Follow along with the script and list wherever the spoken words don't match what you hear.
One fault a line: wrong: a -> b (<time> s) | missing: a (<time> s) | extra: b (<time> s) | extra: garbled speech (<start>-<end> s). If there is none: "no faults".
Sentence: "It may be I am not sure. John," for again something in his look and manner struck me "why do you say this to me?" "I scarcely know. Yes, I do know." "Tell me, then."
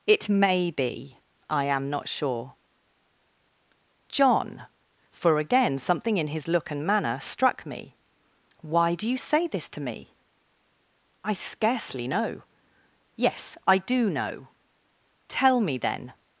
no faults